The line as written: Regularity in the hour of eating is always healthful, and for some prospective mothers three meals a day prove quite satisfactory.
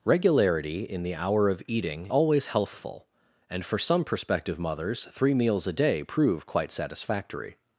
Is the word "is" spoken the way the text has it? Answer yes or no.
no